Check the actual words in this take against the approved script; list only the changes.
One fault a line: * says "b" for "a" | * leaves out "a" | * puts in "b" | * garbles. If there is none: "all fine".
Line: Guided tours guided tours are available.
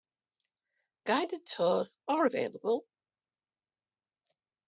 * leaves out "guided tours"